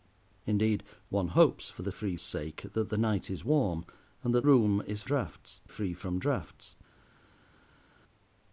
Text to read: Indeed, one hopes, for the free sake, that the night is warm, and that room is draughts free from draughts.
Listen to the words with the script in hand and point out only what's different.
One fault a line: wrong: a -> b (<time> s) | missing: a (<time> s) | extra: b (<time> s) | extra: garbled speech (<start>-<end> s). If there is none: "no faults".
no faults